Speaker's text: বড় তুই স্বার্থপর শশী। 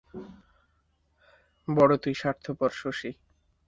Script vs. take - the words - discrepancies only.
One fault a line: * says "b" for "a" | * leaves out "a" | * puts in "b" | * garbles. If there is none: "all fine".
all fine